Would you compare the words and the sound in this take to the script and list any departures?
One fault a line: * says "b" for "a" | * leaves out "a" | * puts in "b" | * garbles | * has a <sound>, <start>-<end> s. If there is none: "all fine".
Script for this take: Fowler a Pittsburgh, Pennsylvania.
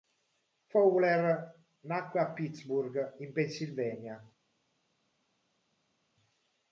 * puts in "nacque"
* puts in "in"